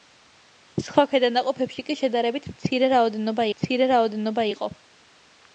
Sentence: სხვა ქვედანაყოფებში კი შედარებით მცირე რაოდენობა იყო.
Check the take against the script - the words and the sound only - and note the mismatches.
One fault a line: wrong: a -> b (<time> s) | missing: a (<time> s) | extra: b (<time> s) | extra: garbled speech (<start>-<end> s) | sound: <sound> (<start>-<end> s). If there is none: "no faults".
extra: მცირე რაოდენობა (3.5 s)